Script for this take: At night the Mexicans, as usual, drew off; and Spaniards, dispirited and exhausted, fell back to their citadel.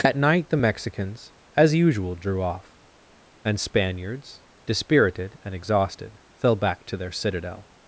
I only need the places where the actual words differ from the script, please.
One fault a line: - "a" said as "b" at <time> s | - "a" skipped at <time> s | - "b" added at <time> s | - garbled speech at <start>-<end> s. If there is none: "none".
none